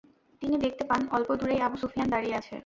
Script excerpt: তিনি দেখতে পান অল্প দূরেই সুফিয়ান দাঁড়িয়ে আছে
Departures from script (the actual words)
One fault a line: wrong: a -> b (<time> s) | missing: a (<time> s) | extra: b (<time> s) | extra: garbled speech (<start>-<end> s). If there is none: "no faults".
extra: আবু (1.6 s)